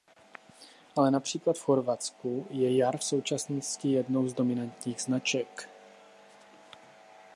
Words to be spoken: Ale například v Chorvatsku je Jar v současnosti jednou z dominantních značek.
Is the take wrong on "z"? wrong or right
right